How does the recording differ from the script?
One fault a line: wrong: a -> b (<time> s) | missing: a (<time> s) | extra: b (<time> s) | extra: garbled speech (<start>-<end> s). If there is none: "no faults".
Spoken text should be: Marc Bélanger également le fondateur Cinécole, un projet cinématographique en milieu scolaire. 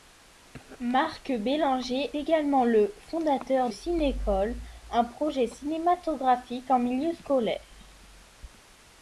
no faults